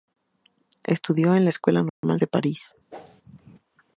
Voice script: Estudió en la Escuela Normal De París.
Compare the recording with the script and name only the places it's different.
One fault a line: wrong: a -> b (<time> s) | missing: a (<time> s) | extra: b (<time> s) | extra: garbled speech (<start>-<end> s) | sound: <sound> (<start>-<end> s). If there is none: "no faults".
sound: dropout (1.9-2.0 s)
sound: whoosh (2.9-3.2 s)